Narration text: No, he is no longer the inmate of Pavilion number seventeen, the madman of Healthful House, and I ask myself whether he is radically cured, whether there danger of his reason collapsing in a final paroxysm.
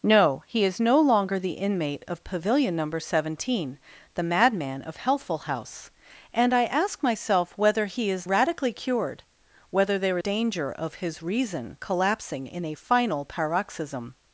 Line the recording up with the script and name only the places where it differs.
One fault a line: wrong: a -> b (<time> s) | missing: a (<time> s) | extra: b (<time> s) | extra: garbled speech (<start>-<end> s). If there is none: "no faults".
no faults